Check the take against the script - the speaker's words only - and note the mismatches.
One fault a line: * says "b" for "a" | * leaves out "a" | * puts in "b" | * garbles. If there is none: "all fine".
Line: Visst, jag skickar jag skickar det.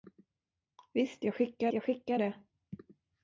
all fine